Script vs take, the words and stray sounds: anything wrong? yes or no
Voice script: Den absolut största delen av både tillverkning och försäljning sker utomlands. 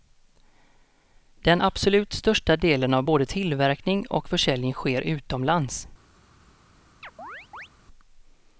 yes